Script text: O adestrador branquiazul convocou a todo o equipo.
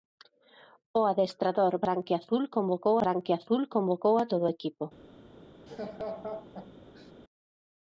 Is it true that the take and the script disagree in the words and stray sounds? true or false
true